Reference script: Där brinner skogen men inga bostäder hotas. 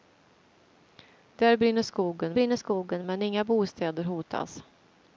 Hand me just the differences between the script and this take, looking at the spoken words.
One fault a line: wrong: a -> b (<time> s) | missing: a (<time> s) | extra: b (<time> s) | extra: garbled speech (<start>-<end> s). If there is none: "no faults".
extra: brinner skogen (2.3 s)